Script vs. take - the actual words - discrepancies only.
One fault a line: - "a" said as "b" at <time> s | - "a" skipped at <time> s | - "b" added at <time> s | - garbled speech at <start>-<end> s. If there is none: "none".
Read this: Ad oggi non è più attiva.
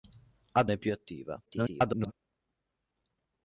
- "oggi non" skipped at 0.7 s
- garbled speech at 1.5-2.1 s